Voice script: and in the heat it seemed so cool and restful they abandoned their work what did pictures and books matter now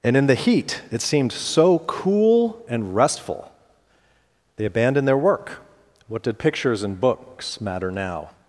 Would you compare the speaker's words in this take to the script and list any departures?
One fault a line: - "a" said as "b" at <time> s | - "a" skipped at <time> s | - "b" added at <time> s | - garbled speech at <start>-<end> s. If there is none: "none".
none